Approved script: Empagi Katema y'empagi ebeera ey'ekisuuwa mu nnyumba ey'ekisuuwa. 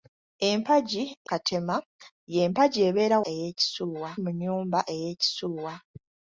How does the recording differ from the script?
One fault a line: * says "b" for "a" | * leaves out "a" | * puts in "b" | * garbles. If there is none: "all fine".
all fine